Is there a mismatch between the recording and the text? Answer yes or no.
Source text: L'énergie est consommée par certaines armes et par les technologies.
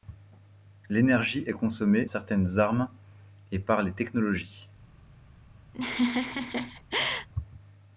yes